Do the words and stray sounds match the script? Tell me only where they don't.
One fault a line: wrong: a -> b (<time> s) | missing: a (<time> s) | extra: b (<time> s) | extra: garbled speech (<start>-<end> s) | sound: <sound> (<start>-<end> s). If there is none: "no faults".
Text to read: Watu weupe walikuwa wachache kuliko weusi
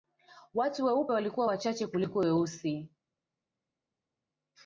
no faults